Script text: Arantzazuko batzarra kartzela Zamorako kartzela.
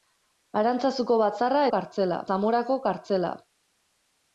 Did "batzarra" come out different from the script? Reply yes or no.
no